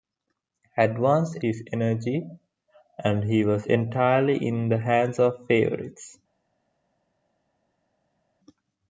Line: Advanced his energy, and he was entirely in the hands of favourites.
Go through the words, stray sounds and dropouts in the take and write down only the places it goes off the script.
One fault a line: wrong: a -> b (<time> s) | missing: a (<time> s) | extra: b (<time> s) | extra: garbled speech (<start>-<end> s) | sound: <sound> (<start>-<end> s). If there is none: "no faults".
no faults